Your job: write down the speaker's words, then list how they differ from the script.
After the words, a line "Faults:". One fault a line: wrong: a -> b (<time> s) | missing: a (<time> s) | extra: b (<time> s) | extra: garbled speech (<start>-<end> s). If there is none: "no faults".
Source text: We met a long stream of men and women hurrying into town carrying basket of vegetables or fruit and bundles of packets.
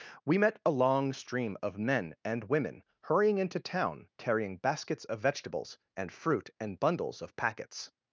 We met a long stream of men and women hurrying into town carrying baskets of vegetables and fruit and bundles of packets.
Faults:
wrong: basket -> baskets (4.6 s)
wrong: or -> and (6.0 s)